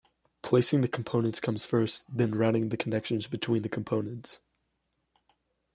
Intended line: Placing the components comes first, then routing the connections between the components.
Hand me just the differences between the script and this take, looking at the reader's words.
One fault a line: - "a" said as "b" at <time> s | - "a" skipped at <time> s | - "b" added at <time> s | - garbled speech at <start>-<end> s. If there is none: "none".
none